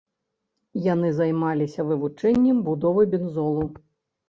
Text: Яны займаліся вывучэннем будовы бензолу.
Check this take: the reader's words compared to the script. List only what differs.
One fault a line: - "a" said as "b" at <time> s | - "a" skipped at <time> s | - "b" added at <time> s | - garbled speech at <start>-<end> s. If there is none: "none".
none